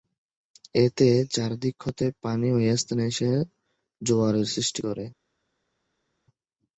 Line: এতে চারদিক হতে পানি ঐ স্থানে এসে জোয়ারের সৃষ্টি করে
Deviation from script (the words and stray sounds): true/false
false